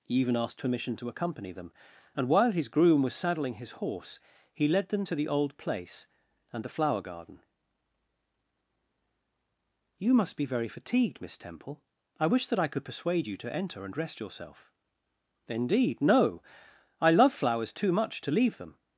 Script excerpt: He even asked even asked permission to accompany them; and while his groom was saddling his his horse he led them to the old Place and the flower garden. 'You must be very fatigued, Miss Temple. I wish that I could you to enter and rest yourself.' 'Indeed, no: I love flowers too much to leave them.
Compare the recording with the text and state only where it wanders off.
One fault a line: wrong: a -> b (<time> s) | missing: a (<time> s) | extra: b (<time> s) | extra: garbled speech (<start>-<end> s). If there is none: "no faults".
missing: even asked (0.6 s)
missing: his (3.7 s)
extra: persuade (12.8 s)